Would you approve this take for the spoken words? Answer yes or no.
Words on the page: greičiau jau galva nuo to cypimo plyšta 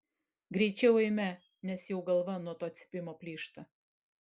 no